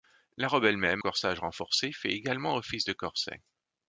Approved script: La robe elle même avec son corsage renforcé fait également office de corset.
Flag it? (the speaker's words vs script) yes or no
yes